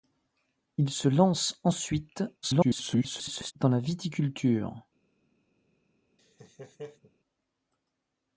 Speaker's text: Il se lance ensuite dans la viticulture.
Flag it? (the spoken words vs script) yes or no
yes